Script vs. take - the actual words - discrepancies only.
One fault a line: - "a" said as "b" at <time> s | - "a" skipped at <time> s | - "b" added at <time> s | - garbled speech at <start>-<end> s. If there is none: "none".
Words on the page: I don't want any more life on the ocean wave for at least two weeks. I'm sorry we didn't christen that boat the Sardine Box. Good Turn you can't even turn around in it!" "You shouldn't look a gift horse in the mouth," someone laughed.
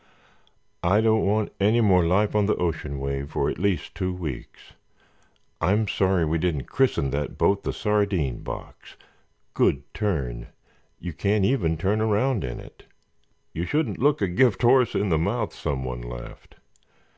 none